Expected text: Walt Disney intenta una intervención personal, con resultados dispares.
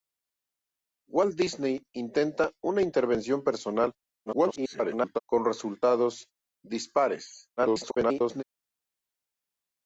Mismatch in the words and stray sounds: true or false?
true